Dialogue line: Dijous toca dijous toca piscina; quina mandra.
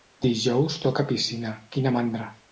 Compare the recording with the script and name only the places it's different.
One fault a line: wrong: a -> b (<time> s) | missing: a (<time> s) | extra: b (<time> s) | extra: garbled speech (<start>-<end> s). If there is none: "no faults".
missing: dijous toca (1.1 s)